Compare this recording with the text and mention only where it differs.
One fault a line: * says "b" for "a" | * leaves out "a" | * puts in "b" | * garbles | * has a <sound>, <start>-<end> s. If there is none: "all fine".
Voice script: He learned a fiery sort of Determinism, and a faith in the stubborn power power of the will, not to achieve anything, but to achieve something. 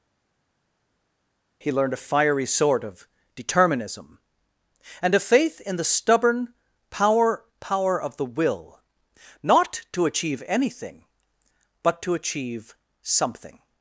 all fine